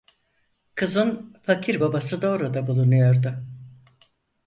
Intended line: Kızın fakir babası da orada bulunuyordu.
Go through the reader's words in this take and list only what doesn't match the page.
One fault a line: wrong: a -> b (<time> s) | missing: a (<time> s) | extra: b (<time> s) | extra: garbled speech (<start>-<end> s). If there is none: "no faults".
no faults